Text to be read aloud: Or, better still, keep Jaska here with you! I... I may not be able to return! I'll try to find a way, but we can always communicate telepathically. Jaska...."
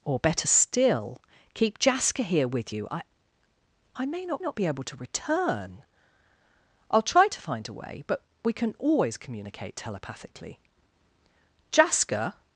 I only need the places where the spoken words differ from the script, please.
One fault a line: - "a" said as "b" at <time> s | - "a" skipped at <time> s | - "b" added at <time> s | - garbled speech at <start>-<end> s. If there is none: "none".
- "not" added at 4.4 s